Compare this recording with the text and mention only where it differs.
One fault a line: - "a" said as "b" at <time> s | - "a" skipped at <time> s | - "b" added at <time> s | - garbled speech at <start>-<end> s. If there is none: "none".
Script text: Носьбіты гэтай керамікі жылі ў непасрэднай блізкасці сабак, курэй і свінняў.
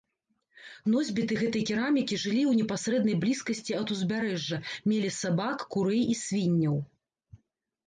- "ад узбярэжжа мелі" added at 3.8 s